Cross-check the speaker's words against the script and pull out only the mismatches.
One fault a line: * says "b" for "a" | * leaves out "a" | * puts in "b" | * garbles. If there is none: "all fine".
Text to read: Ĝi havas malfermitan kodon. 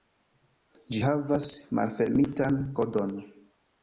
all fine